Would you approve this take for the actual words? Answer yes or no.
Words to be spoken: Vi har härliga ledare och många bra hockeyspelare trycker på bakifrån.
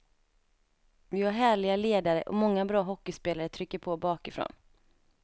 yes